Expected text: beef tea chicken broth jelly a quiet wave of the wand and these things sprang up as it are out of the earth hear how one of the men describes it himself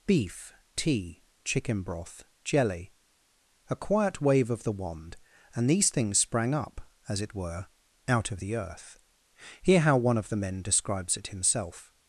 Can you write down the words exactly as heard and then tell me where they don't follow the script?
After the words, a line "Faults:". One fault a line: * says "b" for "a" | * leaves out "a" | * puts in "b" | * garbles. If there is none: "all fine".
beef tea chicken broth jelly a quiet wave of the wand and these things sprang up as it were out of the earth hear how one of the men describes it himself
Faults:
* says "were" for "are"